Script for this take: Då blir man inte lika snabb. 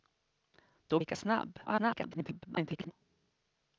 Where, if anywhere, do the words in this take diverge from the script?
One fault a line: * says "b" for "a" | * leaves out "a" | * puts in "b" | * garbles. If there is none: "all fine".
* leaves out "blir man inte"
* garbles